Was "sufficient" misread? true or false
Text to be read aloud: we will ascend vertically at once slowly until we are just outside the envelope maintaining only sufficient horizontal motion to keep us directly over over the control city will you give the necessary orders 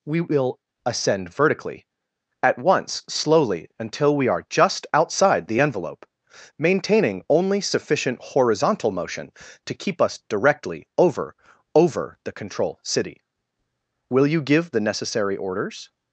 false